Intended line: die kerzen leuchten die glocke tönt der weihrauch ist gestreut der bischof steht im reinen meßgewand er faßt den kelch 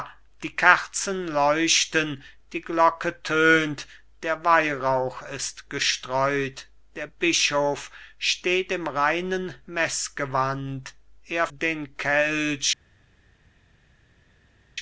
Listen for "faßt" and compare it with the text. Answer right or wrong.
wrong